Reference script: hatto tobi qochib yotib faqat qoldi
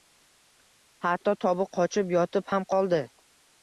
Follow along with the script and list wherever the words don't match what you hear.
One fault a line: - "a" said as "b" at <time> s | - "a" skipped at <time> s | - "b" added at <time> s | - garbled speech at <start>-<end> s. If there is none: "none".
- "faqat" said as "ham" at 2.5 s